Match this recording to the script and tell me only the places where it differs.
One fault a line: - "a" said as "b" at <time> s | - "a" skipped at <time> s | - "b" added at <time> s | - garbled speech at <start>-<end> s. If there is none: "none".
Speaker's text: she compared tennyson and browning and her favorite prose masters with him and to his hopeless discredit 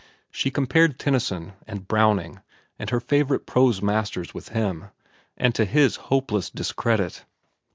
none